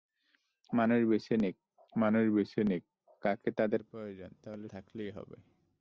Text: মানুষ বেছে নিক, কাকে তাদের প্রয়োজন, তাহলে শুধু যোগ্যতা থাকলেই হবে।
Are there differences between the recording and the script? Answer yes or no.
yes